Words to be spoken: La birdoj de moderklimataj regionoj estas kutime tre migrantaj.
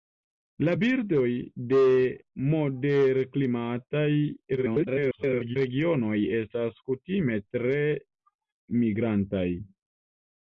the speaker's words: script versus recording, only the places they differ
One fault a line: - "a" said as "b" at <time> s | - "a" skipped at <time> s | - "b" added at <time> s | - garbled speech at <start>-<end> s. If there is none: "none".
- garbled speech at 4.6-5.6 s